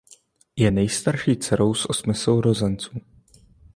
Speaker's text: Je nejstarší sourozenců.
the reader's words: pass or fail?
fail